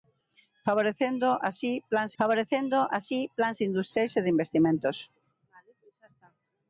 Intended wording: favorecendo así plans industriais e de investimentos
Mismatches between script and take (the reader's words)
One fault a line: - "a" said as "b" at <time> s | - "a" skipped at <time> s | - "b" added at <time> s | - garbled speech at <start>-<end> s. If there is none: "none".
- "favorecendo así plans" added at 2.2 s